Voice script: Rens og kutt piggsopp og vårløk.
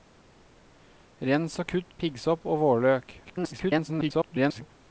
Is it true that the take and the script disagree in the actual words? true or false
true